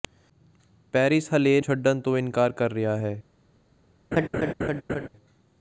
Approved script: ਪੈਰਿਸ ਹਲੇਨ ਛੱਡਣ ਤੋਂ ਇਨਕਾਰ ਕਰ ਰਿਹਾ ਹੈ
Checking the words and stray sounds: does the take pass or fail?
fail